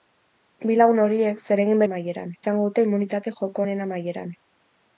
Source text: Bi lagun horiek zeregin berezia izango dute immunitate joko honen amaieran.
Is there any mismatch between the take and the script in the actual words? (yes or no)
yes